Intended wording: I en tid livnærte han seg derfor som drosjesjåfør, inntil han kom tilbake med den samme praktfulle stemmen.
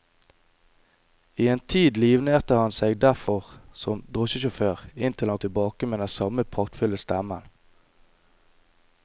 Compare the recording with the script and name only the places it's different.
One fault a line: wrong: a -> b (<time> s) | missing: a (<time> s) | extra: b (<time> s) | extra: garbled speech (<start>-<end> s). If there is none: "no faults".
missing: kom (5.4 s)